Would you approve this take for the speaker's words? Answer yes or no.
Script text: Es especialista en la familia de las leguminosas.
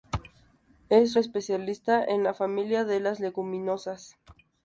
yes